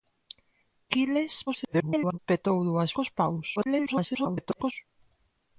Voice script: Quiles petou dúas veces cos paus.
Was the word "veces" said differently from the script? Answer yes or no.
yes